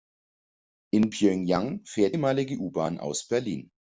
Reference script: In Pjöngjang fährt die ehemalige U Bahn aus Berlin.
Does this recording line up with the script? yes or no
no